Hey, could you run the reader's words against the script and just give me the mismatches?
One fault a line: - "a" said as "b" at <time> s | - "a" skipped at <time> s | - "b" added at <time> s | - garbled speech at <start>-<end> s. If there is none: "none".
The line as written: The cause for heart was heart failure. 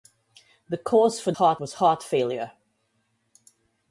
none